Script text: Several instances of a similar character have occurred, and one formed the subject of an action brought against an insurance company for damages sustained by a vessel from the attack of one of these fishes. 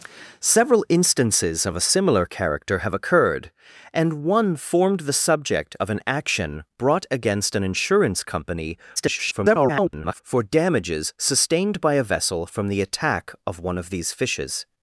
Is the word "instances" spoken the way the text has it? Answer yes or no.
yes